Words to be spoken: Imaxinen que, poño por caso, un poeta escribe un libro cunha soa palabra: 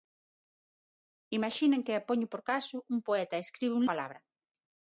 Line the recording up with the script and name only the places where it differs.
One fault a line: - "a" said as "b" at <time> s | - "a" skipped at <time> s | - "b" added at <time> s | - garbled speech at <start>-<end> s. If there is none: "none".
- "libro cunha soa" skipped at 3.9 s